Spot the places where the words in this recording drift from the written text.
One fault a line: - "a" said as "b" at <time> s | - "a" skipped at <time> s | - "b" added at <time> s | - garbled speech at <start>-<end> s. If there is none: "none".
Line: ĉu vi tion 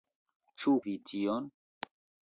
none